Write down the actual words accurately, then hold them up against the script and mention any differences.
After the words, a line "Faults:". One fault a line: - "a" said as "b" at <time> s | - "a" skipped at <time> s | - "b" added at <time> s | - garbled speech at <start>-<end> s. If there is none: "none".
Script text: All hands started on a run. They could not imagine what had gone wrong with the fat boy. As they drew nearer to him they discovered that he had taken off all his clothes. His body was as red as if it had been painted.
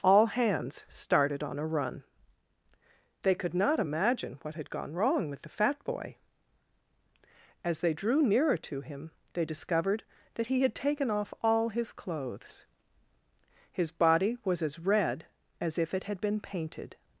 All hands started on a run. They could not imagine what had gone wrong with the fat boy. As they drew nearer to him they discovered that he had taken off all his clothes. His body was as red as if it had been painted.
Faults:
none